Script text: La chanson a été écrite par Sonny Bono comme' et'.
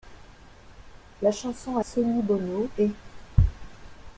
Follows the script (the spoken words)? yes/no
no